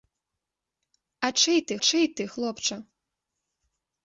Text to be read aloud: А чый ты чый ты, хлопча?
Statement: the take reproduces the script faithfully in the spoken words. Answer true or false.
true